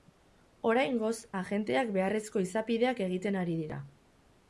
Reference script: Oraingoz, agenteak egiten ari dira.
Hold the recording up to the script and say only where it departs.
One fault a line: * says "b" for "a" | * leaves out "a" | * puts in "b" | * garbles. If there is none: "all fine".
* puts in "beharrezko izapideak"